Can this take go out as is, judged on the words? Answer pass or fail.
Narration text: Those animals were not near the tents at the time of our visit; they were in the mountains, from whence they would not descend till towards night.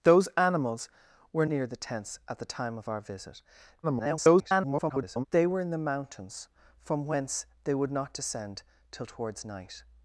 fail